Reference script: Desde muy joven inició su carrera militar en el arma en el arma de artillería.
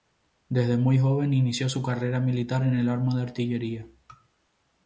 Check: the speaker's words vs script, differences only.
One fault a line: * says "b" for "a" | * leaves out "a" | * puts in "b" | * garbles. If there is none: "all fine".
* leaves out "en el arma"